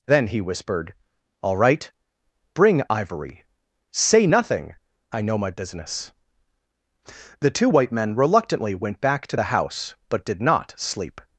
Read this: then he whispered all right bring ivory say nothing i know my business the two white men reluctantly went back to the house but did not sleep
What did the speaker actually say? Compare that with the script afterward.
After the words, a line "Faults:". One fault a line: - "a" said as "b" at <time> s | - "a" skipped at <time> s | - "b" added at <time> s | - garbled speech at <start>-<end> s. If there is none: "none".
then he whispered all right bring ivory say nothing i know my business the two white men reluctantly went back to the house but did not sleep
Faults:
none